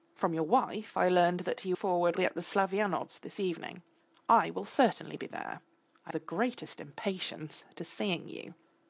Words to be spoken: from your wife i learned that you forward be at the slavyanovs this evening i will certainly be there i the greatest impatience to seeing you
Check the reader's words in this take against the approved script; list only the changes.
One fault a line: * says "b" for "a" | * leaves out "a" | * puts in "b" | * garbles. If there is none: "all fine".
all fine